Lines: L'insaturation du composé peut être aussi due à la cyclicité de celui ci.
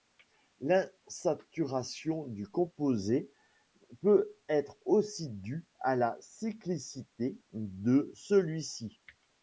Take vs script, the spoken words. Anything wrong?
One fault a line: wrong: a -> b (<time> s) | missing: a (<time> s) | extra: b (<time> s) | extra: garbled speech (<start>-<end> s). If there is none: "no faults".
no faults